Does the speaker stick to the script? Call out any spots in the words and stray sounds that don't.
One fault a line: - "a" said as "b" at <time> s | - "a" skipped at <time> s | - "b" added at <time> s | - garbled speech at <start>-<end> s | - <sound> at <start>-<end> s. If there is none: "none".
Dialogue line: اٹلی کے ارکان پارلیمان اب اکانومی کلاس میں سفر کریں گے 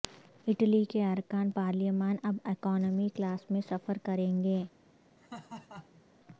- laugh at 5.2-6.0 s